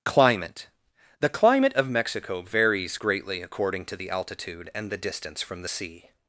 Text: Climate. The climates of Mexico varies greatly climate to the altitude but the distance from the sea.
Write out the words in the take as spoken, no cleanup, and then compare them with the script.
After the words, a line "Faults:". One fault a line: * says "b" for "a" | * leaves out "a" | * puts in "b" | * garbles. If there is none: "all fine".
Climate. The climate of Mexico varies greatly according to the altitude and the distance from the sea.
Faults:
* says "climate" for "climates"
* says "according" for "climate"
* says "and" for "but"